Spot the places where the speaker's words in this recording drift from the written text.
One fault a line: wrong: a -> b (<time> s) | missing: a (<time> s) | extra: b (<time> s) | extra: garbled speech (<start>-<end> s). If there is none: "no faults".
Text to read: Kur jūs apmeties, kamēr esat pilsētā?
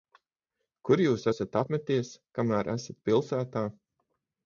extra: esat (1.3 s)